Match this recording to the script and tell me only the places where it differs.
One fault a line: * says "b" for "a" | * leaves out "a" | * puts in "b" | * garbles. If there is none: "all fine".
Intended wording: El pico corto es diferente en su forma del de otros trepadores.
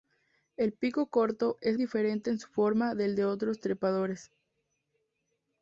all fine